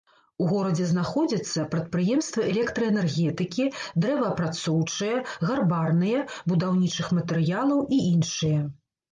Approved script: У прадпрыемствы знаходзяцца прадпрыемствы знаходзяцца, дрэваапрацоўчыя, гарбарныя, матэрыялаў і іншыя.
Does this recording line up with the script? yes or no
no